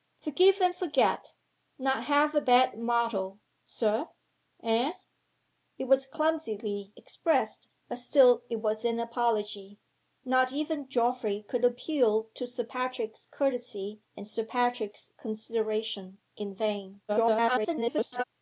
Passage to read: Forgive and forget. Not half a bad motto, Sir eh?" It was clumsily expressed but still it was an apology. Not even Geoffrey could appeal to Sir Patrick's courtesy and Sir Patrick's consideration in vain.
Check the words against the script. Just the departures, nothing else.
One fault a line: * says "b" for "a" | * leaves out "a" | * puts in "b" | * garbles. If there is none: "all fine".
* garbles